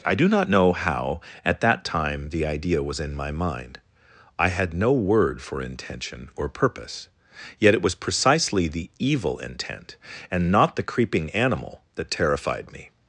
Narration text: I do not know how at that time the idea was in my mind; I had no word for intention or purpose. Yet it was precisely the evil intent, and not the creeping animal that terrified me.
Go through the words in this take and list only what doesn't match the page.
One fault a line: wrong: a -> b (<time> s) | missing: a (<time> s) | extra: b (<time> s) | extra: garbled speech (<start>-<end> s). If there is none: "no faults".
no faults